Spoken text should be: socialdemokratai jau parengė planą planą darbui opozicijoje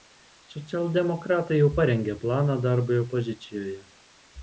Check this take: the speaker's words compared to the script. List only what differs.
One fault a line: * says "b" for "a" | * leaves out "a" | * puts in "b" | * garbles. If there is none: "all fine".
* leaves out "planą"